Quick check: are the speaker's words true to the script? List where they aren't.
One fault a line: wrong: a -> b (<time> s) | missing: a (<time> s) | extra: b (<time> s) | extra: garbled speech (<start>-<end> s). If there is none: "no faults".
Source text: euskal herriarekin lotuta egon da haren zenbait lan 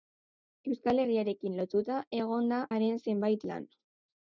no faults